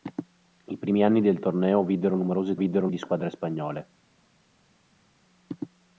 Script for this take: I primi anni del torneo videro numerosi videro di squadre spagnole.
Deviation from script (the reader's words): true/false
false